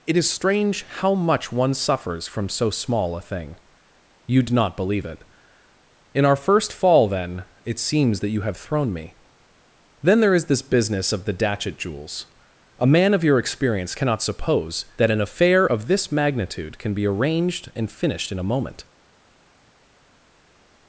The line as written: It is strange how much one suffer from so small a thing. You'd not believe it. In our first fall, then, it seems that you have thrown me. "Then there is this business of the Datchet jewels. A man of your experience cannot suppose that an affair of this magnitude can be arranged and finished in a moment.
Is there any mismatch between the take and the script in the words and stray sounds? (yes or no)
yes